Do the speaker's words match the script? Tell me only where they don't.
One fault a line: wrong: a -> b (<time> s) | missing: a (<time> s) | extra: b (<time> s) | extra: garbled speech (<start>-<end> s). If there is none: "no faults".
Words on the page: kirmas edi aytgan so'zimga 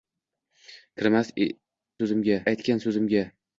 wrong: edi -> so'zimga (2.0 s)